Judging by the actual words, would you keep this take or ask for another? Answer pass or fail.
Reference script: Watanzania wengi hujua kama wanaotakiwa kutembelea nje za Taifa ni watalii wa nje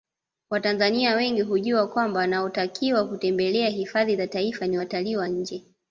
fail